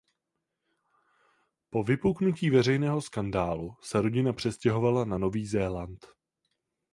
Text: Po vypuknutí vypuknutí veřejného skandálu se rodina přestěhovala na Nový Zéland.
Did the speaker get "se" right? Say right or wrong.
right